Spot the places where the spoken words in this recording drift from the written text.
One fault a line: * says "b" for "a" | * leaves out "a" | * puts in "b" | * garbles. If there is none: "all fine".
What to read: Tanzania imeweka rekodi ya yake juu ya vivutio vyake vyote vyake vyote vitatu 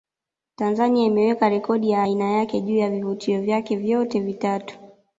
* puts in "aina"
* leaves out "vyake vyote"